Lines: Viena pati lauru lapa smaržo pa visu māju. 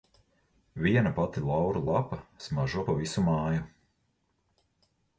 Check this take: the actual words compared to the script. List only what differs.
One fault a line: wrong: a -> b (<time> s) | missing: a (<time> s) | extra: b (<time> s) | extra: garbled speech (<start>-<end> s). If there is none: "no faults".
no faults